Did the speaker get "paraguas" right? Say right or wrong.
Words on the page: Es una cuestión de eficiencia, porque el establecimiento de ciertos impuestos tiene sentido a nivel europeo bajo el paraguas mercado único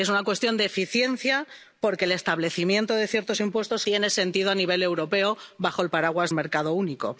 right